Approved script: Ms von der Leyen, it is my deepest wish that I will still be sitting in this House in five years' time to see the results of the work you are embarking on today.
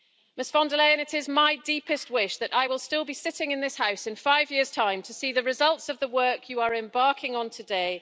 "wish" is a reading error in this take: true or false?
false